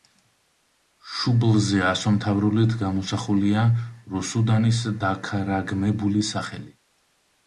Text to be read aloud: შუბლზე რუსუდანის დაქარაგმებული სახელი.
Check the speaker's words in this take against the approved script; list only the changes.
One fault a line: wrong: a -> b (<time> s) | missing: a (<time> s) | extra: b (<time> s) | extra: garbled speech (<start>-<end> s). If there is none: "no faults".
extra: ასომთავრულით გამოსახულია (1.9 s)